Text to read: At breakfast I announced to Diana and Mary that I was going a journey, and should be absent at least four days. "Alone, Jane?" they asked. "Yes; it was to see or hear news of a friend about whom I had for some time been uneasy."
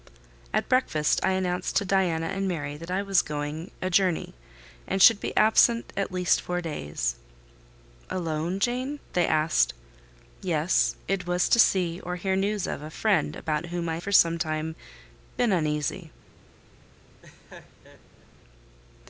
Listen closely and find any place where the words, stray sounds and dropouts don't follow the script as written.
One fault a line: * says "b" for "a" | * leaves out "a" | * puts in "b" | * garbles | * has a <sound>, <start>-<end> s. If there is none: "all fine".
* leaves out "had"
* has a laugh, 17.2-18.3 s